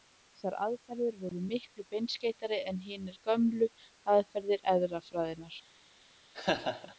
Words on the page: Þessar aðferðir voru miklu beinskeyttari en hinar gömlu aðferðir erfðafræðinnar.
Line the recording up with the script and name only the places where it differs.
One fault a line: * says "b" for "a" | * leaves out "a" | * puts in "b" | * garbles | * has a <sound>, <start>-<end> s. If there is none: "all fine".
* has a laugh, 6.3-7.0 s